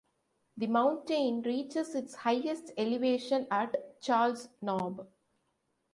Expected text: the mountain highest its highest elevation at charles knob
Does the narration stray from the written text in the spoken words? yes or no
yes